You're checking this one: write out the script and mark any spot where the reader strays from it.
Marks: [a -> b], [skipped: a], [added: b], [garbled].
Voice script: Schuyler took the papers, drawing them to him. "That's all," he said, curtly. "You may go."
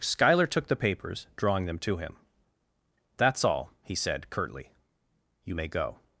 Schuyler took the papers, drawing them to him. "That's all," he said, curtly. "You may go."